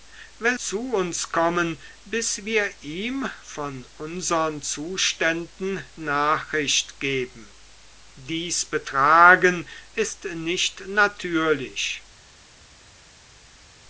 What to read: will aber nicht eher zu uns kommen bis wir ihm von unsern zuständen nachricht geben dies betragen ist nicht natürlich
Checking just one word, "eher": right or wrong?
wrong